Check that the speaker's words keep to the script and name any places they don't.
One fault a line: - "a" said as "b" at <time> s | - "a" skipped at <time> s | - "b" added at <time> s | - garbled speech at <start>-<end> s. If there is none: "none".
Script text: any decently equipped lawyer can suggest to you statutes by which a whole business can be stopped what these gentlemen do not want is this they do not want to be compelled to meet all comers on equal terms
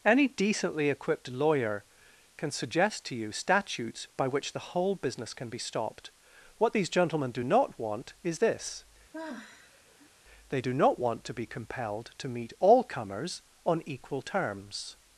- "a" said as "the" at 4.5 s